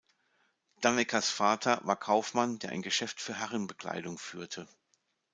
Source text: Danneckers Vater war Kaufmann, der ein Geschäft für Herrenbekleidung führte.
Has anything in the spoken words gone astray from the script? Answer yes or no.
no